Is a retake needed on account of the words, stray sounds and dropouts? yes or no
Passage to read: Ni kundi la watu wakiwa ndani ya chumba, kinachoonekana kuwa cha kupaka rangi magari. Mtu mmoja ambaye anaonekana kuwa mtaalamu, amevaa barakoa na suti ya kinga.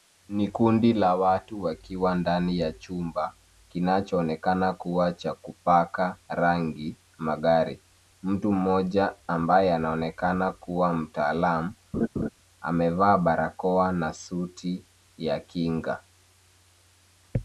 yes